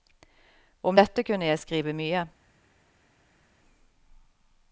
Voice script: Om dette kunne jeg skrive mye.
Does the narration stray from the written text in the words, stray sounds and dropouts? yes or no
no